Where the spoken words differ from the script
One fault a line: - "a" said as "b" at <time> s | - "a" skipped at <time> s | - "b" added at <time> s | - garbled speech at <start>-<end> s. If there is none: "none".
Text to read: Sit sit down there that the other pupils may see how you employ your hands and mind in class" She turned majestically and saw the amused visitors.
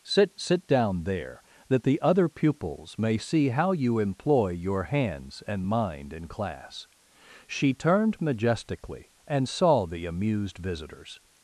none